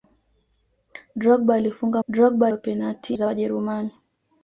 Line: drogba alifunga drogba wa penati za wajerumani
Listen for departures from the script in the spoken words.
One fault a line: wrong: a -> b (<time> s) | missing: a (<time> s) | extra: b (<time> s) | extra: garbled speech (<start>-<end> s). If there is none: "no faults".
no faults